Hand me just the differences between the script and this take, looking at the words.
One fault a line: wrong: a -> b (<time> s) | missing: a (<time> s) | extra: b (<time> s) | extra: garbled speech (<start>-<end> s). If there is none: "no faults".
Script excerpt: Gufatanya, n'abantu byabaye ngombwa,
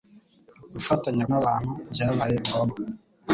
no faults